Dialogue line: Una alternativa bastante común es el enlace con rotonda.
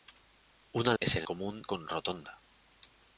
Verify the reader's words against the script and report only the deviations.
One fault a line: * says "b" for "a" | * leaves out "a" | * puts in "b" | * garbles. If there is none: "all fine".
* leaves out "alternativa bastante común"
* says "común" for "enlace"